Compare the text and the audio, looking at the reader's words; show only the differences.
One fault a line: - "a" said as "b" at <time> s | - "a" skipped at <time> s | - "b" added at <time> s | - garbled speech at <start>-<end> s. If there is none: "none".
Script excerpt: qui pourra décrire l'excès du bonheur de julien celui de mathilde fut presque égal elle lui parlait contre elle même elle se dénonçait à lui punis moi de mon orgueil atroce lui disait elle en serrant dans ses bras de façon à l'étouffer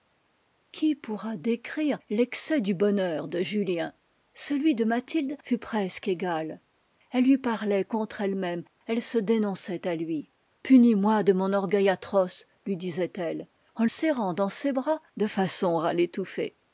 none